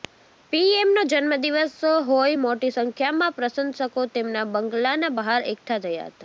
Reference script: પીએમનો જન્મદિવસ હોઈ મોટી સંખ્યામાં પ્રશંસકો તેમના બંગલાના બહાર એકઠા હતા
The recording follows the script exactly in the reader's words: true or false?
false